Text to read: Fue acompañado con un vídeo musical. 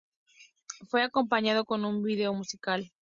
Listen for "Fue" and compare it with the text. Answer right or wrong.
right